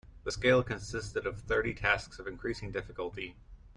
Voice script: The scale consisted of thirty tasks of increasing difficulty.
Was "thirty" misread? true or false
false